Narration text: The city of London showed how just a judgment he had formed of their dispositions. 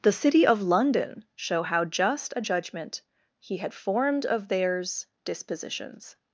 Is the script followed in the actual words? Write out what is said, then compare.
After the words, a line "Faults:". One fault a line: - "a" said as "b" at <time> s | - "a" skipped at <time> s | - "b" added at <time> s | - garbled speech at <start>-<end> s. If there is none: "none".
The city of London show how just a judgment he had formed of theirs dispositions.
Faults:
- "showed" said as "show" at 1.4 s
- "their" said as "theirs" at 4.5 s